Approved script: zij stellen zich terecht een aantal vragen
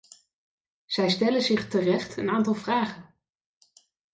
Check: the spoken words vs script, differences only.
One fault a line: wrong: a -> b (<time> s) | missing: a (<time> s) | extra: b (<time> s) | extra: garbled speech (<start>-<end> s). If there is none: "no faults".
no faults